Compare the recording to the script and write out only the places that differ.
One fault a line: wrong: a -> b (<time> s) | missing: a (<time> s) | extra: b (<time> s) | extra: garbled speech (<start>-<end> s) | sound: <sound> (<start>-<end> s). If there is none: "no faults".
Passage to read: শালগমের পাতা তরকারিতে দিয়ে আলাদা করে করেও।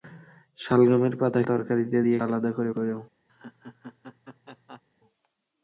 sound: laugh (3.3-4.8 s)